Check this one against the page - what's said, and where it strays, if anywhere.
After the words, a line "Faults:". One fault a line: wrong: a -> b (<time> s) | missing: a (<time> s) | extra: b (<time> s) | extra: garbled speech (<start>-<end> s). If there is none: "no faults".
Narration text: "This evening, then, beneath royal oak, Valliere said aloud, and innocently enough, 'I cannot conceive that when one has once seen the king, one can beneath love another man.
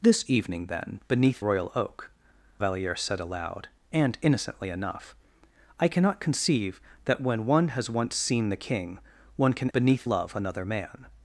"This evening, then, beneath royal oak, Valliere said aloud, and innocently enough, 'I cannot conceive that when one has once seen the king, one can beneath love another man.
Faults:
no faults